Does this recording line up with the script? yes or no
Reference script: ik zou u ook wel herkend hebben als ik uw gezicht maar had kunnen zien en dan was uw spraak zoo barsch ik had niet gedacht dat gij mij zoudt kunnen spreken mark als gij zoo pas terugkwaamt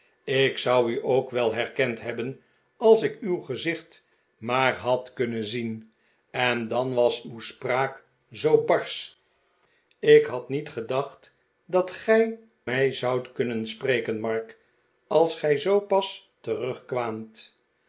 yes